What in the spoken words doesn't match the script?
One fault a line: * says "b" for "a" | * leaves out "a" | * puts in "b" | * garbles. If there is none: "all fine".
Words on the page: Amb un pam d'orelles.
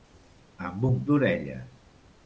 * leaves out "pam"